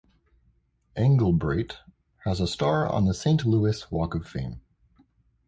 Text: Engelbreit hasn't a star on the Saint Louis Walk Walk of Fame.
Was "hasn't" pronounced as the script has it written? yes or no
no